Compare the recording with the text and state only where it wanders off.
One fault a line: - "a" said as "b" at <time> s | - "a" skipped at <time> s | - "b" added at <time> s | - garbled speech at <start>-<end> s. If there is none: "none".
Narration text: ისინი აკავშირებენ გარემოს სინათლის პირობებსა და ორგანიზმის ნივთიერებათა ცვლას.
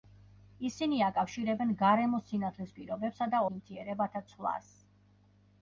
- "ორგანიზმის" skipped at 3.4 s